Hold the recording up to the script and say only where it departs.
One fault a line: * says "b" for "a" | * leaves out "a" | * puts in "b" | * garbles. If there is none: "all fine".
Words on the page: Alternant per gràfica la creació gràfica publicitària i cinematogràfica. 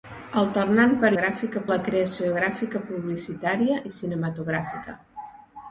all fine